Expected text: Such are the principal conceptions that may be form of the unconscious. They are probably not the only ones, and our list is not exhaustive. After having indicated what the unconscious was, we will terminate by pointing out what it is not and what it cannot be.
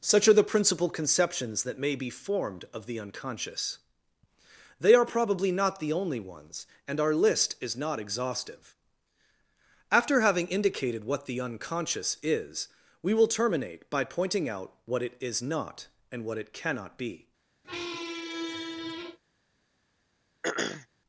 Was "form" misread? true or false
true